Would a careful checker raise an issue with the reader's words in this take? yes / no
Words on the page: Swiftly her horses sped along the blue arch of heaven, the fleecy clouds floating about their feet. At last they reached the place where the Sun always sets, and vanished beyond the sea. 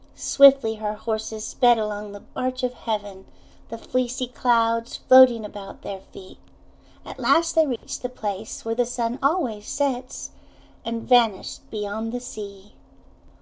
yes